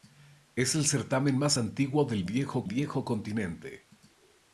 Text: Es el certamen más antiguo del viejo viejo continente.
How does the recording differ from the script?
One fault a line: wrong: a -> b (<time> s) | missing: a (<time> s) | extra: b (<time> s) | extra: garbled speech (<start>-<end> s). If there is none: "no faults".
no faults